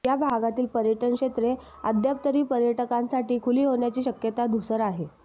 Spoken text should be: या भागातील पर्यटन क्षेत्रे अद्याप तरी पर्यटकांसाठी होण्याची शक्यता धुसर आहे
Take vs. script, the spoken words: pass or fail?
fail